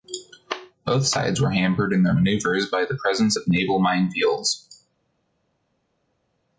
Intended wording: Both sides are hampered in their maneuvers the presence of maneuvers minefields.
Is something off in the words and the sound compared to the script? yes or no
yes